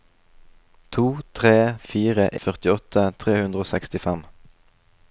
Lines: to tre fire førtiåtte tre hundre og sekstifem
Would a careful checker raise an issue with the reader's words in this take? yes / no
no